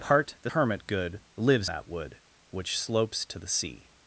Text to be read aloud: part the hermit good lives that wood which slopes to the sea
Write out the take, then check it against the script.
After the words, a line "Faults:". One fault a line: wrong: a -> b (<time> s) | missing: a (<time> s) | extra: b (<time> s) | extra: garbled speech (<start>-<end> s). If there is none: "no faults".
part the hermit good lives that wood which slopes to the sea
Faults:
no faults